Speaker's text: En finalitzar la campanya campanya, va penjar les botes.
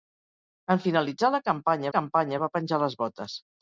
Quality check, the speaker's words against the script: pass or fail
pass